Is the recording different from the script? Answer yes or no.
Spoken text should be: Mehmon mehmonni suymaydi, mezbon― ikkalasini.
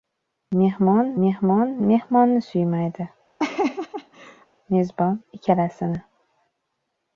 yes